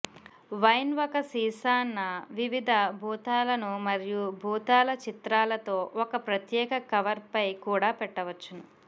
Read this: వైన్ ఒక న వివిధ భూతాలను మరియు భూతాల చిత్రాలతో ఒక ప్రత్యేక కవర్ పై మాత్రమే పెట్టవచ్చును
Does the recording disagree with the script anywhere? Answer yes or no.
yes